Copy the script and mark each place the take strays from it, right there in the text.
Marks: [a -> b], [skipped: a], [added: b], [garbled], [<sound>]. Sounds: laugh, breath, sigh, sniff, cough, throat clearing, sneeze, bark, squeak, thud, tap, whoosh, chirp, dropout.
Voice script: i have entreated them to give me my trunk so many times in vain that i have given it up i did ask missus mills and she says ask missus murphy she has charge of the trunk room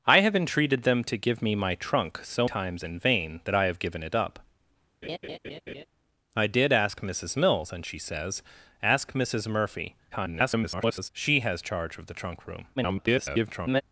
i have entreated them to give me my trunk so [skipped: many] times in vain that i have given it up [laugh] i did ask missus mills and she says ask missus murphy [garbled] she has charge of the trunk room [garbled]